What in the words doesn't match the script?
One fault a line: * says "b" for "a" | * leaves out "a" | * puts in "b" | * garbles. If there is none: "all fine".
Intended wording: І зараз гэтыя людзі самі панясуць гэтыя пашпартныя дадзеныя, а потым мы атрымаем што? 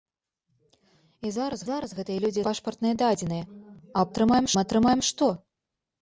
* puts in "зараз"
* leaves out "самі панясуць гэтыя"
* says "атрымаем" for "потым"